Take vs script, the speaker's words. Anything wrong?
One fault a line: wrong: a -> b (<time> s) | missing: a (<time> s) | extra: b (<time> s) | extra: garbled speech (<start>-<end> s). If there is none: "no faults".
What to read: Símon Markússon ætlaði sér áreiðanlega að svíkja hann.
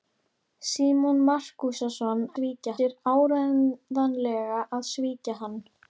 wrong: ætlaði -> svíkja (2.3 s)